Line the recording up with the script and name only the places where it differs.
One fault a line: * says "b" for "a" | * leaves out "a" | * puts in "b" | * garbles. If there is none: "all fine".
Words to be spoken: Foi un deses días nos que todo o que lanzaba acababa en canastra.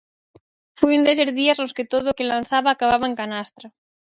all fine